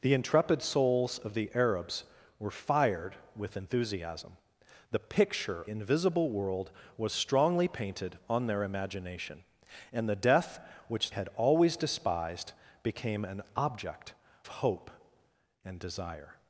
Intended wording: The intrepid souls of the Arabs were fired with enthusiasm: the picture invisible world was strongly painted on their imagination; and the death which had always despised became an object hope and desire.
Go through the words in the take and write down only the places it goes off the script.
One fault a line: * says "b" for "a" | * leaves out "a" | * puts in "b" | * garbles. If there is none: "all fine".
all fine